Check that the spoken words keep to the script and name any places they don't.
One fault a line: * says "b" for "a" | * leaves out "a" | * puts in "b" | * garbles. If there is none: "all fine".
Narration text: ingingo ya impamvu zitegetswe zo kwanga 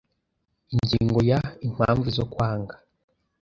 * leaves out "zitegetswe"